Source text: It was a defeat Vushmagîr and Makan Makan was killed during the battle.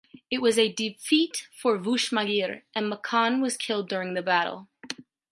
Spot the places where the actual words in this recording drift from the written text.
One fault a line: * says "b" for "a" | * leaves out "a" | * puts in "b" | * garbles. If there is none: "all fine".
* puts in "for"
* leaves out "Makan"